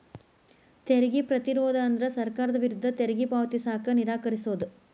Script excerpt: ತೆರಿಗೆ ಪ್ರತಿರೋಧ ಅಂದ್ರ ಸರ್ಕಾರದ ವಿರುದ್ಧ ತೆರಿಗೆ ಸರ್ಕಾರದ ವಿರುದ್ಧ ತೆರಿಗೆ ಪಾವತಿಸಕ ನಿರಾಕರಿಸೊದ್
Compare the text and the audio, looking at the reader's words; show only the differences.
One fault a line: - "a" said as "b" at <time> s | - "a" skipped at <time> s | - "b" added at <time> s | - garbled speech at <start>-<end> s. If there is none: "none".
- "ಸರ್ಕಾರದ ವಿರುದ್ಧ ತೆರಿಗೆ" skipped at 3.3 s